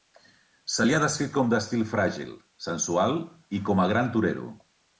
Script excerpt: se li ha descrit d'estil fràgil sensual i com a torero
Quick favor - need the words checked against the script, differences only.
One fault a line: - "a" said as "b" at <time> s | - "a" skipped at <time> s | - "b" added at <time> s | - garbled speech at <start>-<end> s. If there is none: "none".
- "com" added at 1.3 s
- "gran" added at 3.9 s